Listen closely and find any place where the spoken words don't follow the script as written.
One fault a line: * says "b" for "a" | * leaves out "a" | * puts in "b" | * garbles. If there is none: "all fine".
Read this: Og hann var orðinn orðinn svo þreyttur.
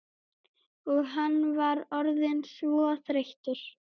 * leaves out "orðinn"